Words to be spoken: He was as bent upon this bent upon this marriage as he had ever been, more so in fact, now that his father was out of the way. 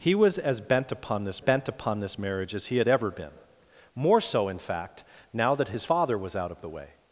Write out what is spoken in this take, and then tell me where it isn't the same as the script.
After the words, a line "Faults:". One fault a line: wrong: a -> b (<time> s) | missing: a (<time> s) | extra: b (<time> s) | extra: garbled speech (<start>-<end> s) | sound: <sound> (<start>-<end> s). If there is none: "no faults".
He was as bent upon this bent upon this marriage as he had ever been, more so in fact, now that his father was out of the way.
Faults:
no faults